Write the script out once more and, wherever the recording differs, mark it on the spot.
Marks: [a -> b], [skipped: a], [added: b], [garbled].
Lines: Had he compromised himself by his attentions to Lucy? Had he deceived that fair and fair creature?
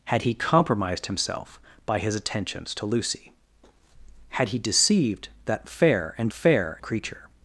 Had he compromised himself by his attentions to Lucy? Had he deceived that fair and fair creature?